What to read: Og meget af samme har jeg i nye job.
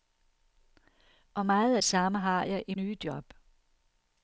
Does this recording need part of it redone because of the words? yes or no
no